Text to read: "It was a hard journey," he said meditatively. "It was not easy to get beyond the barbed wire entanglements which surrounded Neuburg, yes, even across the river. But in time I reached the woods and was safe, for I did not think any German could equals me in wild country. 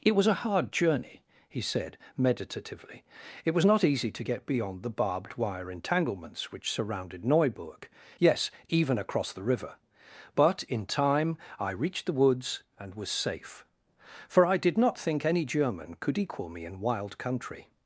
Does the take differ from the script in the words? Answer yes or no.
yes